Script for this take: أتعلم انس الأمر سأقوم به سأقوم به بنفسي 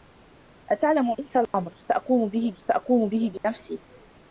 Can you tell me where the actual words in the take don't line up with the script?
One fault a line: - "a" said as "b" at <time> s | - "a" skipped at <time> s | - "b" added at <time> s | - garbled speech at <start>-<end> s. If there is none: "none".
none